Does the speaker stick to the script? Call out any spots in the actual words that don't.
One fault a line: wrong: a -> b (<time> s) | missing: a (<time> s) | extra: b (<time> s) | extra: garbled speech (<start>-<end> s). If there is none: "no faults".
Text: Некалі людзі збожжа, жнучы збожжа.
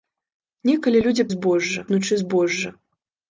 no faults